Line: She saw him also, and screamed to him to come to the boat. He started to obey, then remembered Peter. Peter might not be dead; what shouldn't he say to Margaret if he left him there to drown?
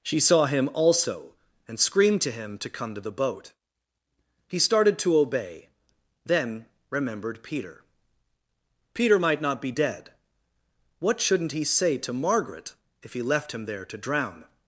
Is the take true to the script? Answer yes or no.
yes